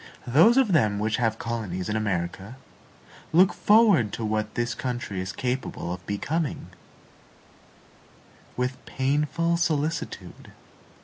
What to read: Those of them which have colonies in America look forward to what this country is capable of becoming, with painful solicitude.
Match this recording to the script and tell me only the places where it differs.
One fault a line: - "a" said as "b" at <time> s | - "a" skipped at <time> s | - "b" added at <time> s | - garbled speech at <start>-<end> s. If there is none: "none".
none